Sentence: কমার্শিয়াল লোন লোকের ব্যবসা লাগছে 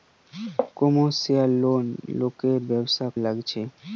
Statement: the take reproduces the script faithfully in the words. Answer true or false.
true